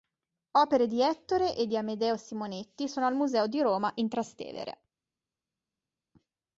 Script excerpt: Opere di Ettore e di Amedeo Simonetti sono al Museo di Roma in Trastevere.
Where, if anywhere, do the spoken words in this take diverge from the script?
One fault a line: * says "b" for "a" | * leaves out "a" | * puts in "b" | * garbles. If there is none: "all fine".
all fine